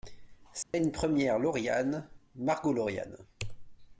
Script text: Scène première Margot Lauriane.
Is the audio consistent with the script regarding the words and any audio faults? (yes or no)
no